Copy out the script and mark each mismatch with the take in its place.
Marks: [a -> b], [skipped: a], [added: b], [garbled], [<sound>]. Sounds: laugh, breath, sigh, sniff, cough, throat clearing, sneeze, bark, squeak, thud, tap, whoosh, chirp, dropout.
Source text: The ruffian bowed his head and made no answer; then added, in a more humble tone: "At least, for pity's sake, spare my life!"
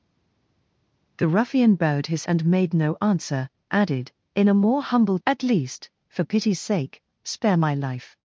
The ruffian bowed his [skipped: head] and made no answer; [skipped: then] added, in a more humble [skipped: tone:] "At least, for pity's sake, spare my life!"